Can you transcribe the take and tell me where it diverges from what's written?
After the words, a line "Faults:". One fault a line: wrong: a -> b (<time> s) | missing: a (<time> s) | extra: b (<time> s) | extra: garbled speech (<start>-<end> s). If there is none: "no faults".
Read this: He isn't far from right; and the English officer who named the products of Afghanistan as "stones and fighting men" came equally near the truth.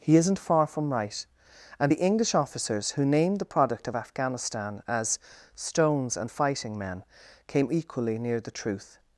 He isn't far from right; and the English officers who named the product of Afghanistan as "stones and fighting men" came equally near the truth.
Faults:
wrong: officer -> officers (2.3 s)
wrong: products -> product (3.4 s)